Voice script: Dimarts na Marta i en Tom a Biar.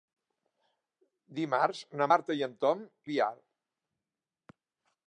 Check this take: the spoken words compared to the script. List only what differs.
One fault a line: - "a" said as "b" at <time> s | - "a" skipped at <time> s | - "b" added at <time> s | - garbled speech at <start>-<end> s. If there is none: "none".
none